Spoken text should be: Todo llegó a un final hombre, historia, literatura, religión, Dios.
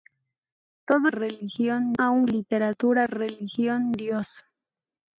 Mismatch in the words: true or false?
true